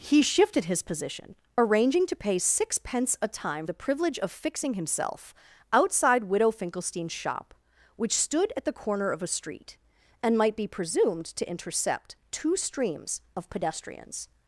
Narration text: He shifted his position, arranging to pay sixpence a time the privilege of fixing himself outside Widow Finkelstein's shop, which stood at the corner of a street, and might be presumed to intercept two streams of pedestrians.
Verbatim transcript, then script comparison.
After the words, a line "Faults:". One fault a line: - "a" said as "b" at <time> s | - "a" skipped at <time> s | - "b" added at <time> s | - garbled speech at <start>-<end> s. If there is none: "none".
He shifted his position, arranging to pay sixpence a time the privilege of fixing himself outside Widow Finkelstein's shop, which stood at the corner of a street, and might be presumed to intercept two streams of pedestrians.
Faults:
none